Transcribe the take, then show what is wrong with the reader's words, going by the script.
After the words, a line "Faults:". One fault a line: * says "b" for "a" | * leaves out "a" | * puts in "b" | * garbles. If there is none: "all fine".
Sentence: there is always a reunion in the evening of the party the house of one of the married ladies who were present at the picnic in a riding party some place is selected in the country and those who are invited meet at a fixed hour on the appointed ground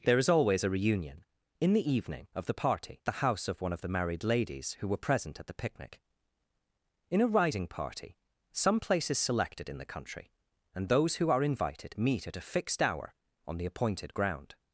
there is always a reunion in the evening of the party the house of one of the married ladies who were present at the picnic in a riding party some place is selected in the country and those who are invited meet at a fixed hour on the appointed ground
Faults:
all fine